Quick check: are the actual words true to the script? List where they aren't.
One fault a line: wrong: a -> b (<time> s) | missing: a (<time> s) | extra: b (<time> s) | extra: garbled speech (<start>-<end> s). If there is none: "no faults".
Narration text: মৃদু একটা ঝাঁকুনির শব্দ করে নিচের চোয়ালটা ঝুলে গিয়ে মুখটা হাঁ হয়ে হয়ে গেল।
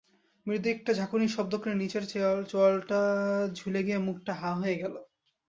missing: হয়ে (4.8 s)